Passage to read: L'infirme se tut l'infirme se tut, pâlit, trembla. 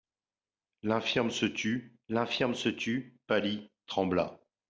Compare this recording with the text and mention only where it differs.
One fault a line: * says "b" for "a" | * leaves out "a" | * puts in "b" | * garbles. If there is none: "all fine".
all fine